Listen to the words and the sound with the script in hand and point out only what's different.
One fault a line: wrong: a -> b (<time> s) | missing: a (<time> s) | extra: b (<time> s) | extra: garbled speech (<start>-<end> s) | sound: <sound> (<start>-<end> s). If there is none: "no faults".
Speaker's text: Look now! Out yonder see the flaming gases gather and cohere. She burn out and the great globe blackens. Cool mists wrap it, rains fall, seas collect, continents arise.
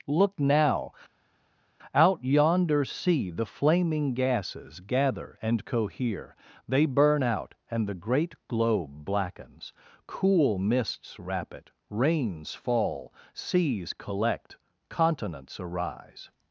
wrong: She -> They (6.7 s)